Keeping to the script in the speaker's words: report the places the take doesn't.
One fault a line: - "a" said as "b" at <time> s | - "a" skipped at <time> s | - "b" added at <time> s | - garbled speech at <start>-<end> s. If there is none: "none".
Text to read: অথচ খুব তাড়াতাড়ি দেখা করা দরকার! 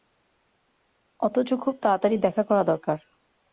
none